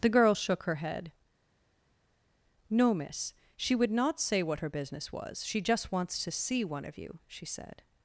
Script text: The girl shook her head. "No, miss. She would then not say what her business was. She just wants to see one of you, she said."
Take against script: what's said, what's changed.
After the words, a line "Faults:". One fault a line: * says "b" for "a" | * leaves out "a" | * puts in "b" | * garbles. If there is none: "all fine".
The girl shook her head. "No, miss. She would not say what her business was. She just wants to see one of you, she said."
Faults:
* leaves out "then"